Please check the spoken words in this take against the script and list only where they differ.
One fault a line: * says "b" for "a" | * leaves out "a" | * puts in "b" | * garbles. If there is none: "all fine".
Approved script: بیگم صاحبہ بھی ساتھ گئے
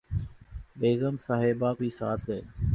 all fine